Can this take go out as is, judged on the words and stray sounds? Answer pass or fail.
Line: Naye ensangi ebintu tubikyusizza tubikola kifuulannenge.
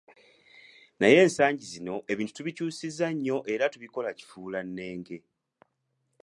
fail